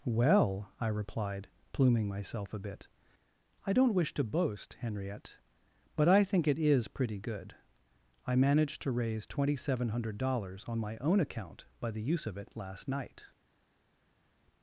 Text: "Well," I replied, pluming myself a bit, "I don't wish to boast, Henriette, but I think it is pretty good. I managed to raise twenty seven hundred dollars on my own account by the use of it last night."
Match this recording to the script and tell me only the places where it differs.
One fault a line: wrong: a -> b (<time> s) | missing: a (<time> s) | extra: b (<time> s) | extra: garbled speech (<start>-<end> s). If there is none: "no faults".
no faults